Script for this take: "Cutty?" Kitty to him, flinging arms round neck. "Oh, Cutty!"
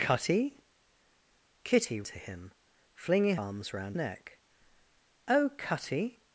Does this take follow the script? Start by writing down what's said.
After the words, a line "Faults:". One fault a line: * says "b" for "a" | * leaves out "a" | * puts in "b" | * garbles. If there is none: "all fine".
"Cutty?" Kitty to him, flinging arms round neck. "Oh, Cutty!"
Faults:
all fine